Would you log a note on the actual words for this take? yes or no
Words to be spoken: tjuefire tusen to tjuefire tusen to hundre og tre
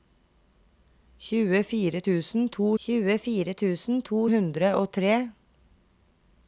no